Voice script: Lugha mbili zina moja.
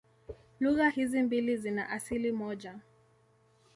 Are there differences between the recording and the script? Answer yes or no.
yes